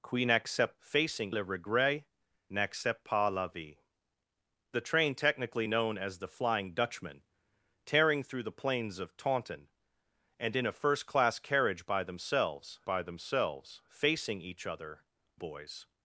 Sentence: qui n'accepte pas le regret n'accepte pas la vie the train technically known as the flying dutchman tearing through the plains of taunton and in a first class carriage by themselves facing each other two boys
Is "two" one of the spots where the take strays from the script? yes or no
yes